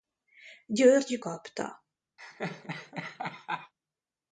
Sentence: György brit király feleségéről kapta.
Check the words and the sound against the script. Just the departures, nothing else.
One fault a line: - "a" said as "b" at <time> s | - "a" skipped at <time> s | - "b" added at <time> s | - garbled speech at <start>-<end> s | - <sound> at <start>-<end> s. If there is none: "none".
- "brit király feleségéről" skipped at 1.2 s
- laugh at 2.2-3.7 s